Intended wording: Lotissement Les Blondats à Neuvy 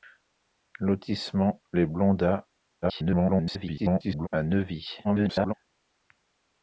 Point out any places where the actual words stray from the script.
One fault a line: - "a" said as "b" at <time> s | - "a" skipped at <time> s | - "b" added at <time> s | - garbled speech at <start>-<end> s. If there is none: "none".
- garbled speech at 2.8-4.3 s
- garbled speech at 5.0-5.5 s